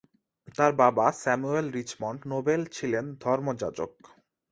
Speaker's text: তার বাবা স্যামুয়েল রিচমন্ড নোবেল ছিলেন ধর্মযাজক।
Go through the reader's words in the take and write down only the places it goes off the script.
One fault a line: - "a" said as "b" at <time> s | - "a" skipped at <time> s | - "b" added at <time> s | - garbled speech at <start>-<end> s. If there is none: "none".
none